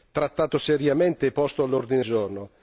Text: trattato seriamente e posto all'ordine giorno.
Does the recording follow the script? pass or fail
pass